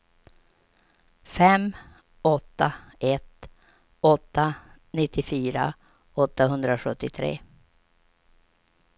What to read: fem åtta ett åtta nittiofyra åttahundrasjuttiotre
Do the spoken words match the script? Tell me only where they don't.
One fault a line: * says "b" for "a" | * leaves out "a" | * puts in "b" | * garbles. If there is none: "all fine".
all fine